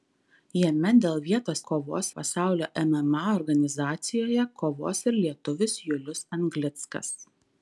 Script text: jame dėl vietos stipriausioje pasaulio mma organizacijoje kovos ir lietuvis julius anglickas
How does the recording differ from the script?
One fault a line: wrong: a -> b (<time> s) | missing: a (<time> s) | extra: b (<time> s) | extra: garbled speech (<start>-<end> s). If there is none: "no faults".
wrong: stipriausioje -> kovos (1.7 s)